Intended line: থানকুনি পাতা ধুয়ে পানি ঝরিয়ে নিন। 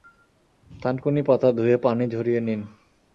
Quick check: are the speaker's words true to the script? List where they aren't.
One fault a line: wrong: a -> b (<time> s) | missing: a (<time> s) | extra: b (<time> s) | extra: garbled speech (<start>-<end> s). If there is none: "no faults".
no faults